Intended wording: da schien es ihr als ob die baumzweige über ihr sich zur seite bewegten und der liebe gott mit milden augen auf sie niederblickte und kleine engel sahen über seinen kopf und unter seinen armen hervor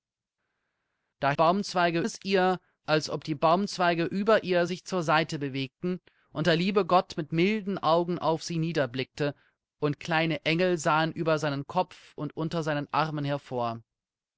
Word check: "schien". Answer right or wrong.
wrong